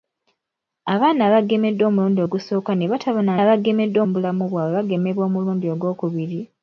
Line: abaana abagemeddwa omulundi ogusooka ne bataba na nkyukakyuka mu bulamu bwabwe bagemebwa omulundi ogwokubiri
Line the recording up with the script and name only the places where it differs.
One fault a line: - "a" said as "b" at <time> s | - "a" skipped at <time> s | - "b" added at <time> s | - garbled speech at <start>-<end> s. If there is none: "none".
- "nkyukakyuka" said as "abagemeddwa" at 3.4 s